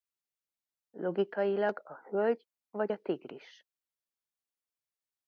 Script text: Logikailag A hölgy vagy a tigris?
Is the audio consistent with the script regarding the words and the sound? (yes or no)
yes